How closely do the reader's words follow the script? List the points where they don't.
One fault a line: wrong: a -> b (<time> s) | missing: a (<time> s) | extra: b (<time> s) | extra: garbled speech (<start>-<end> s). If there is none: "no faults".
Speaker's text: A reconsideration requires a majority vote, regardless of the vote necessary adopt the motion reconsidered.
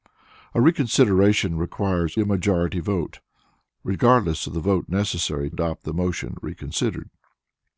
no faults